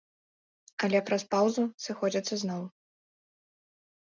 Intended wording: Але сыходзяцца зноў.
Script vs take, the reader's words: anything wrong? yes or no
yes